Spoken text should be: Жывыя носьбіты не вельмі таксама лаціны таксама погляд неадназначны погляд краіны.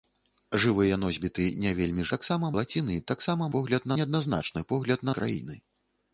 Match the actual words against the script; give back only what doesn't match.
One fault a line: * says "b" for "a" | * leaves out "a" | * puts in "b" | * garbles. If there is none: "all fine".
all fine